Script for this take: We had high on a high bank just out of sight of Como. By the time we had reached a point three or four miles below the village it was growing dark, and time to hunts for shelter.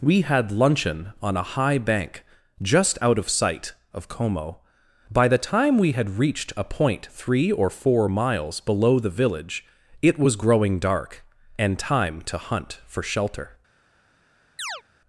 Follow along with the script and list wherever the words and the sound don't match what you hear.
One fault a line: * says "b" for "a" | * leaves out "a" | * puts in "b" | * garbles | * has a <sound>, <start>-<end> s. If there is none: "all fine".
* says "luncheon" for "high"
* says "hunt" for "hunts"
* has a chirp, 14.6-14.8 s